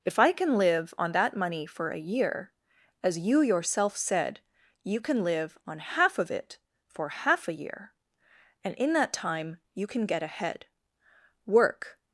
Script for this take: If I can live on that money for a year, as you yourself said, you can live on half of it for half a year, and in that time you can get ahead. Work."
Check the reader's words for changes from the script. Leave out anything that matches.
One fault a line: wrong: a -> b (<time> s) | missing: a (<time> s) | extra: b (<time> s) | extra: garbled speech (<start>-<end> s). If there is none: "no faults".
no faults